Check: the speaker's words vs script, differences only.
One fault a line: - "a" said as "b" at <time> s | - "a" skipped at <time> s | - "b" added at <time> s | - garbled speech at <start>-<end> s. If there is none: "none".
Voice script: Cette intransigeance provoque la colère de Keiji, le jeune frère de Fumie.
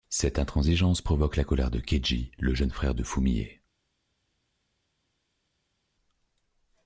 none